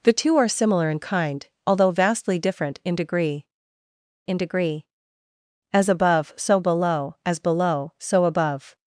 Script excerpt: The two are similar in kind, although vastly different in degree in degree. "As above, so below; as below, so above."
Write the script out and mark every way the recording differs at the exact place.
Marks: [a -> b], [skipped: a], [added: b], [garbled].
The two are similar in kind, although vastly different in degree in degree. "As above, so below; as below, so above."